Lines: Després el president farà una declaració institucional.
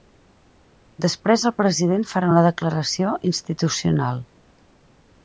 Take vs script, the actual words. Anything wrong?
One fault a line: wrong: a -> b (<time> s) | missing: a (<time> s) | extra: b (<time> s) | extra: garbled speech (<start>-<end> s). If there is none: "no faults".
no faults